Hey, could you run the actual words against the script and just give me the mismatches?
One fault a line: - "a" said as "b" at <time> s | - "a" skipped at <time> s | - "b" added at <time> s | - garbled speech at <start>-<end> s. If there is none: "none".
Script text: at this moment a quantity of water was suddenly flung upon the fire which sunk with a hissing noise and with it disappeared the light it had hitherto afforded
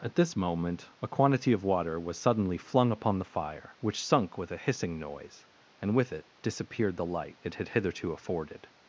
none